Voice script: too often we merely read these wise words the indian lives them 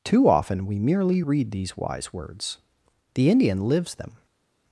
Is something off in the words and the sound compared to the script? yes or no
no